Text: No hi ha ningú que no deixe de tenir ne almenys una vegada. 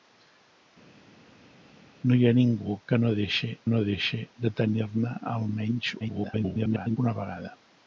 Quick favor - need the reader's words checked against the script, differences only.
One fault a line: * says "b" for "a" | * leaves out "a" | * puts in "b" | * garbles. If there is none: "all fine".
* puts in "no deixe"
* garbles